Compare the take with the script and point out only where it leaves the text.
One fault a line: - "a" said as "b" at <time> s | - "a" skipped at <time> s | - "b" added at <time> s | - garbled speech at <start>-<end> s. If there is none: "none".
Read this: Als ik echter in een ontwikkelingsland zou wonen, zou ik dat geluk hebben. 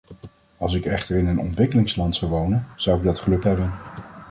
none